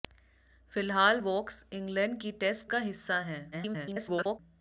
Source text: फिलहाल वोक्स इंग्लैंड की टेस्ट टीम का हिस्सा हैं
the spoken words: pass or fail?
fail